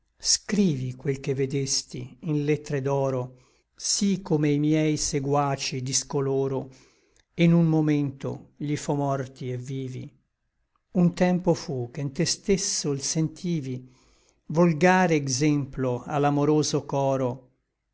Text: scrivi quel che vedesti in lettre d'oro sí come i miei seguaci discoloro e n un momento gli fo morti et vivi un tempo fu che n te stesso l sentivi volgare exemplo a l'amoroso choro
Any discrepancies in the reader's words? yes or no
no